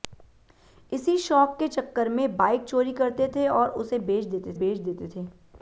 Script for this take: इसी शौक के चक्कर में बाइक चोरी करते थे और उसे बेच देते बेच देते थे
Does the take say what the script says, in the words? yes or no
yes